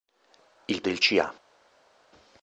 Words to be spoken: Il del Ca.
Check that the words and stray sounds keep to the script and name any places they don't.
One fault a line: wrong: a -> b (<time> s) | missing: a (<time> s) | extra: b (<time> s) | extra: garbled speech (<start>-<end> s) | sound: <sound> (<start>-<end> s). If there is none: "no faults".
no faults